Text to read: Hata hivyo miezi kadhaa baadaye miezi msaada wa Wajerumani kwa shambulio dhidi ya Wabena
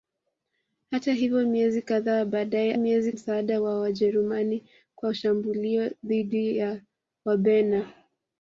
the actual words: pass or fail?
pass